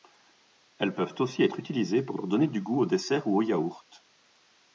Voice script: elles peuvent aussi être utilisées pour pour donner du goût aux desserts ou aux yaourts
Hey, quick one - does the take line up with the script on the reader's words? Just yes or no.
yes